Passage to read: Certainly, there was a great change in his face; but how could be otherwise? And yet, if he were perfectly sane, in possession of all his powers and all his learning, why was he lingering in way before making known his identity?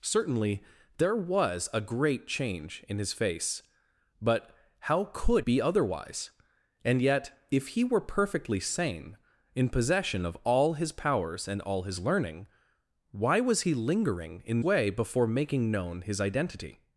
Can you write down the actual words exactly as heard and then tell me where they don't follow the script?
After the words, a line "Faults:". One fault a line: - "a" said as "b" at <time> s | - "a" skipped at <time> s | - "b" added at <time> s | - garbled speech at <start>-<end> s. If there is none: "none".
Certainly, there was a great change in his face; but how could be otherwise? And yet, if he were perfectly sane, in possession of all his powers and all his learning, why was he lingering in way before making known his identity?
Faults:
none